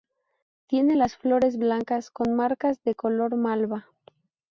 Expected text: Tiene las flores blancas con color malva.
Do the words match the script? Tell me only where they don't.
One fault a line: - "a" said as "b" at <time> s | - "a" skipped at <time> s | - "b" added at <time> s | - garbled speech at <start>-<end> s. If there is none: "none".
- "marcas de" added at 2.3 s